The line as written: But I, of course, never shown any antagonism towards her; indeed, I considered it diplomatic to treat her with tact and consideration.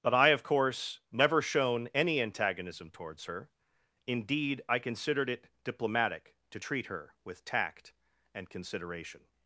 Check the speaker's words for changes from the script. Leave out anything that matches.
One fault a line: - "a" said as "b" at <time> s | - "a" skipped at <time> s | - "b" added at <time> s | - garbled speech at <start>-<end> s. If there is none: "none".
none